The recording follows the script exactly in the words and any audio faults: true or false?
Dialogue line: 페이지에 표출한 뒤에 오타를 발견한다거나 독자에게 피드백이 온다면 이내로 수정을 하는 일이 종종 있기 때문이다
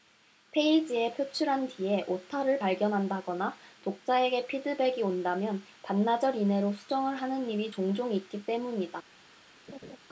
false